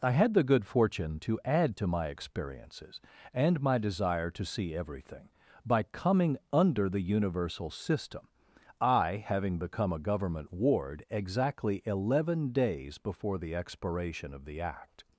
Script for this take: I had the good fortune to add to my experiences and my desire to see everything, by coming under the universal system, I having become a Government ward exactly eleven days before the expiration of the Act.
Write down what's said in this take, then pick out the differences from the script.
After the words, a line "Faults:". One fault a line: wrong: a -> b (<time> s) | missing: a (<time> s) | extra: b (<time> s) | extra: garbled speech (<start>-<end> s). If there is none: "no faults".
I had the good fortune to add to my experiences and my desire to see everything, by coming under the universal system, I having become a Government ward exactly eleven days before the expiration of the Act.
Faults:
no faults